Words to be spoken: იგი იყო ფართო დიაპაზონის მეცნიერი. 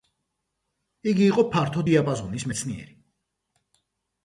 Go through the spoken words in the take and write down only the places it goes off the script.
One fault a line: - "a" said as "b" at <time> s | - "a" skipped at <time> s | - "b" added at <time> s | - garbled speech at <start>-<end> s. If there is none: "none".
none